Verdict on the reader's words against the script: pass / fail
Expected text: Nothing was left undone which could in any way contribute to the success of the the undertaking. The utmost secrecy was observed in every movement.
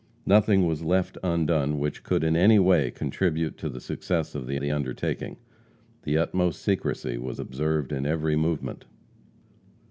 pass